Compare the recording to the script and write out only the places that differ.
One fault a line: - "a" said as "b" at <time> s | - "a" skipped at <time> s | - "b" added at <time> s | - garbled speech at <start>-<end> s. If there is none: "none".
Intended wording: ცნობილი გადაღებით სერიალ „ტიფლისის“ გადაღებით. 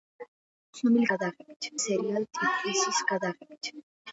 none